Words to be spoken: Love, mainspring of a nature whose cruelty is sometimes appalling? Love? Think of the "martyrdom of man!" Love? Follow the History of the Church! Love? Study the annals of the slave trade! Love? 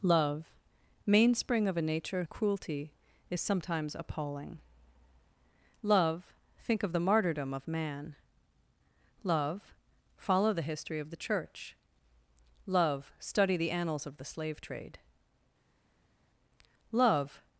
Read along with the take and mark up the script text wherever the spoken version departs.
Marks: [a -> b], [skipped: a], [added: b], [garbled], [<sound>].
Love, mainspring of a nature [skipped: whose] cruelty is sometimes appalling? Love? Think of the "martyrdom of man!" Love? Follow the History of the Church! Love? Study the annals of the slave trade! Love?